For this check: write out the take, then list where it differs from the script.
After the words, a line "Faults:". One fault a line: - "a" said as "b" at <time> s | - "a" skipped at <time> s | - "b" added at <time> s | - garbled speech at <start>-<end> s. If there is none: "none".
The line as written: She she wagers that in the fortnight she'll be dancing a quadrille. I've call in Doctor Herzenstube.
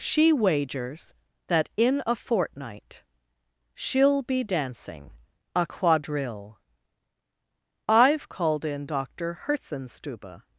She wagers that in a fortnight she'll be dancing a quadrille. I've called in Doctor Herzenstube.
Faults:
- "she" skipped at 0.3 s
- "the" said as "a" at 2.1 s
- "call" said as "called" at 8.3 s